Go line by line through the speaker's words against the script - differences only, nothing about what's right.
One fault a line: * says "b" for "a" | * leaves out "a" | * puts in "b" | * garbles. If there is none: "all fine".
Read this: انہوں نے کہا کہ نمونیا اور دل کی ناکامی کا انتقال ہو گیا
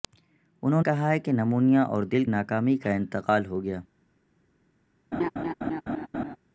* leaves out "نے"
* leaves out "کی"